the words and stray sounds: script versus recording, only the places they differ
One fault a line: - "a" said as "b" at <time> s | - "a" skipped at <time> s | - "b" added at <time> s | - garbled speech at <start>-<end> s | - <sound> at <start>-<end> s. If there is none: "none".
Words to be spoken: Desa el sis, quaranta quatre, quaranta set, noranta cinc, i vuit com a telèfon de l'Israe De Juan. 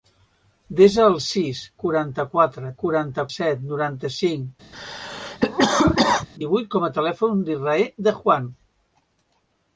- cough at 4.7-6.3 s